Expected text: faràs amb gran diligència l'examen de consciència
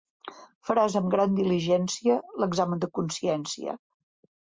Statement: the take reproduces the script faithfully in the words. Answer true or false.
true